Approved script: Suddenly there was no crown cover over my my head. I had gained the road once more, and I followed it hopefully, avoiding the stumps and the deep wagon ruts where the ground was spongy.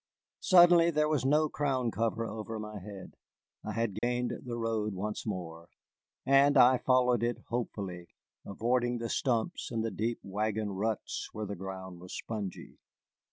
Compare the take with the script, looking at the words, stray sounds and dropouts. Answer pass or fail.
fail